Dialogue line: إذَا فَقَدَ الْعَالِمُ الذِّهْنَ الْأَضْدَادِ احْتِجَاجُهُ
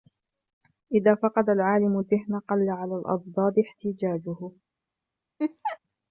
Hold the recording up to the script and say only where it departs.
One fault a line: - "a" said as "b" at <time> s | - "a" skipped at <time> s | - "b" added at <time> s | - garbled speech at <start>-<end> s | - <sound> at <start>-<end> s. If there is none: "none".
- "قَلَّ عَلَى" added at 2.4 s
- laugh at 5.4-5.8 s